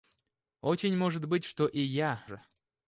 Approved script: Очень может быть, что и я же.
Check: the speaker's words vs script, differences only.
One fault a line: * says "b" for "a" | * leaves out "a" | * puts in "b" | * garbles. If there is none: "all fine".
all fine